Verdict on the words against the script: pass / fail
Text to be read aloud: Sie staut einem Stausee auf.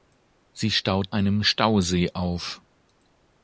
pass